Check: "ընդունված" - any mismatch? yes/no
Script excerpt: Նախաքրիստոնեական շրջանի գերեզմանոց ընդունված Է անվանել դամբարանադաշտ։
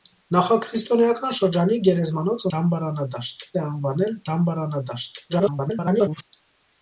yes